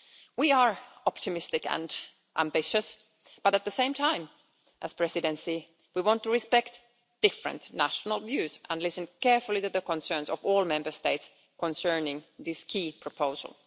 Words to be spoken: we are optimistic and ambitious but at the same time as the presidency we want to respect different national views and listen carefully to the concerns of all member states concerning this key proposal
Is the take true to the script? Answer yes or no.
yes